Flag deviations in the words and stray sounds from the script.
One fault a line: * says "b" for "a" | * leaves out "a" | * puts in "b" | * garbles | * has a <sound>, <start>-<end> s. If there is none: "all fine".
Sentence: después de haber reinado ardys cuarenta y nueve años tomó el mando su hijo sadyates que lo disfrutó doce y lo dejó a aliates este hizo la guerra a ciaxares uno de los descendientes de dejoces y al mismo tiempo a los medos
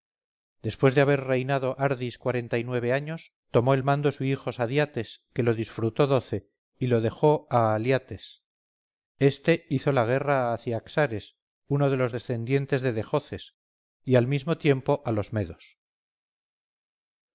all fine